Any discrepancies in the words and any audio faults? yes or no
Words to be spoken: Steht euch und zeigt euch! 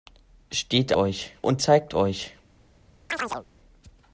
yes